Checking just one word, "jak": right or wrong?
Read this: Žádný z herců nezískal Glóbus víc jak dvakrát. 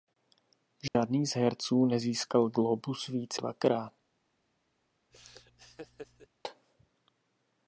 wrong